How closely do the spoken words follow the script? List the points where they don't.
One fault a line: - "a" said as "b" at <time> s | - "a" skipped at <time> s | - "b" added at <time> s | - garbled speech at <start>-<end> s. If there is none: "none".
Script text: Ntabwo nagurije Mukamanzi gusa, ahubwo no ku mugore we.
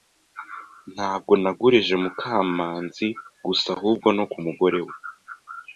none